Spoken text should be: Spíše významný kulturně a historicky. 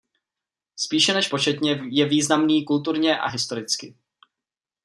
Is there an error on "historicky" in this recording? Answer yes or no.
no